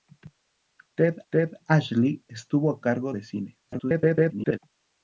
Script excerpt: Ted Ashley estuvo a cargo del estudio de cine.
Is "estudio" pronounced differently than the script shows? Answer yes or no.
yes